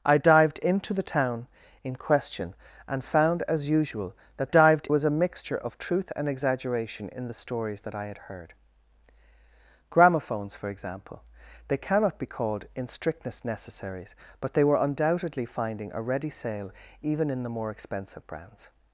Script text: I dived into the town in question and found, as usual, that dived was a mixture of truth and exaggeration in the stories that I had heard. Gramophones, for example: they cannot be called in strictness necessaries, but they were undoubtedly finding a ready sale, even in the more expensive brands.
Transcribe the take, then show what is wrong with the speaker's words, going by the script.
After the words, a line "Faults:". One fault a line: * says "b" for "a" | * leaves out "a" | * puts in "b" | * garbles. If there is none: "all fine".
I dived into the town in question and found, as usual, that dived was a mixture of truth and exaggeration in the stories that I had heard. Gramophones, for example: they cannot be called in strictness necessaries, but they were undoubtedly finding a ready sale, even in the more expensive brands.
Faults:
all fine